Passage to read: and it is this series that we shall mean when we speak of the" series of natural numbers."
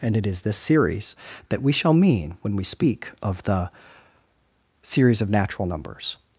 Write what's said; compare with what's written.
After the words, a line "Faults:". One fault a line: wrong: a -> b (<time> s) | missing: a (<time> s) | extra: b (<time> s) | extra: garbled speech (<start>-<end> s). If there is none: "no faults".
and it is this series that we shall mean when we speak of the" series of natural numbers."
Faults:
no faults